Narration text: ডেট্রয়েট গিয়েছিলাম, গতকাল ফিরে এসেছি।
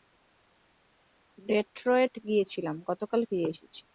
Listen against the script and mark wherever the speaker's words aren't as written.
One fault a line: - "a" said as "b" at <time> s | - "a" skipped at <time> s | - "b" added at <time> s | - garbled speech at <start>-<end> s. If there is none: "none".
none